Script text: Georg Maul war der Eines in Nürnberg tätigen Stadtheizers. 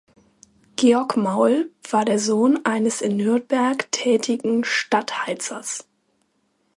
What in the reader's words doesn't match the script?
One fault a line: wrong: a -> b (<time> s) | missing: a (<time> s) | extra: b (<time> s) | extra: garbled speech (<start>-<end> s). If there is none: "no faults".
extra: Sohn (2.2 s)